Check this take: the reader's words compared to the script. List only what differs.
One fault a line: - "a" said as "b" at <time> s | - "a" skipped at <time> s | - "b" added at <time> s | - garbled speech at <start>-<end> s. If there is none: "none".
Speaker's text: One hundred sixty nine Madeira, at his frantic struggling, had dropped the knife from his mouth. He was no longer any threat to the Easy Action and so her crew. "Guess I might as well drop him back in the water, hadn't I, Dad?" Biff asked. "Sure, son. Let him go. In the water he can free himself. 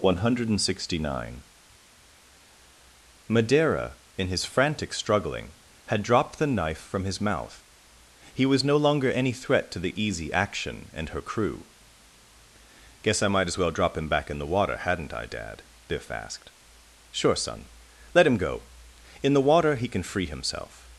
- "at" said as "in" at 4.2 s
- "so" skipped at 11.1 s